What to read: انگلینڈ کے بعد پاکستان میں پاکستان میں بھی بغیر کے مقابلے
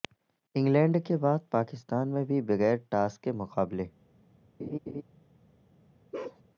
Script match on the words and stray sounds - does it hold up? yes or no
no